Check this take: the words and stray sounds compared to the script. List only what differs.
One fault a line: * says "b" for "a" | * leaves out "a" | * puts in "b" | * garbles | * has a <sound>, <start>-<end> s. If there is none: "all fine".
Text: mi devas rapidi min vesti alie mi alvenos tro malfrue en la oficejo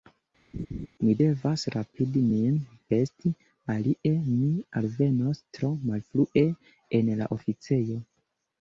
* has a laugh, 0.5-0.9 s